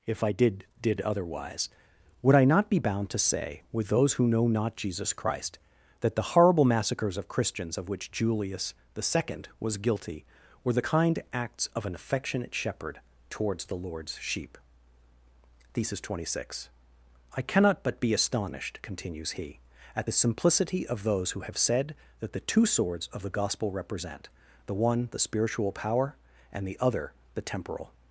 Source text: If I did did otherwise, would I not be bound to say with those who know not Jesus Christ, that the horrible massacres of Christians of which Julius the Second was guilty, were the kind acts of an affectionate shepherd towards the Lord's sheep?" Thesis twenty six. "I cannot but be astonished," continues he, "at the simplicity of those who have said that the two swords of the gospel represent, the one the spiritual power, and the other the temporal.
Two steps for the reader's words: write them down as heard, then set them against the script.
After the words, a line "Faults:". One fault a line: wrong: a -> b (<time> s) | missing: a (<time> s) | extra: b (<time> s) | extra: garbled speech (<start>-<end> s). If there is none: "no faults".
If I did did otherwise, would I not be bound to say with those who know not Jesus Christ, that the horrible massacres of Christians of which Julius the Second was guilty, were the kind acts of an affectionate shepherd towards the Lord's sheep?" Thesis twenty six. "I cannot but be astonished," continues he, "at the simplicity of those who have said that the two swords of the gospel represent, the one the spiritual power, and the other the temporal.
Faults:
no faults